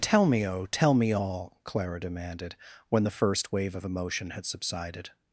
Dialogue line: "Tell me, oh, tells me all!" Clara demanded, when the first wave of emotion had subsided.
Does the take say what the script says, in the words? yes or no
no